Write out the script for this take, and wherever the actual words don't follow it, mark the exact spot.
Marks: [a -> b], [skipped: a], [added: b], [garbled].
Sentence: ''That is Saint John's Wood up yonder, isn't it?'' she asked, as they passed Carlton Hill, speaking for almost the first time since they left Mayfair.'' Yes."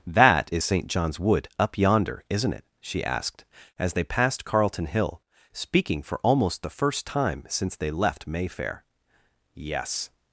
''That is Saint John's Wood up yonder, isn't it?'' she asked, as they passed Carlton Hill, speaking for almost the first time since they left Mayfair.'' Yes."